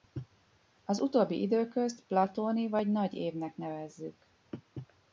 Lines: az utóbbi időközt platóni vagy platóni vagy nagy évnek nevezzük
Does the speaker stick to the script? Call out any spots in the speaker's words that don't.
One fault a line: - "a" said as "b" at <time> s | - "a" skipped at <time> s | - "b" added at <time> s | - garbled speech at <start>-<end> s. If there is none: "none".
- "platóni vagy" skipped at 2.9 s